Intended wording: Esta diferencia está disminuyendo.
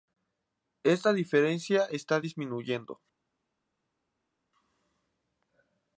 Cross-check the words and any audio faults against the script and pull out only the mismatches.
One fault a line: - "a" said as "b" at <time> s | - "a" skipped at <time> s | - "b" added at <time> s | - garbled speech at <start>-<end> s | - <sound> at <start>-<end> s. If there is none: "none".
none